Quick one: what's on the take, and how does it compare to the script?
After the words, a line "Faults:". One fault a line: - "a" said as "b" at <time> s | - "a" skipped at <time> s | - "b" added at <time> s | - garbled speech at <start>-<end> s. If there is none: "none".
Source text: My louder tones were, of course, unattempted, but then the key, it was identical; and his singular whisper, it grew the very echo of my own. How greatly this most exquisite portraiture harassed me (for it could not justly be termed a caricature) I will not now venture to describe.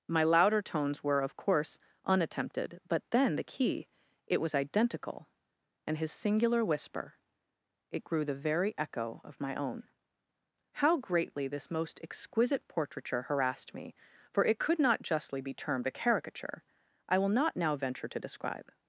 My louder tones were, of course, unattempted, but then the key, it was identical; and his singular whisper, it grew the very echo of my own. How greatly this most exquisite portraiture harassed me (for it could not justly be termed a caricature) I will not now venture to describe.
Faults:
none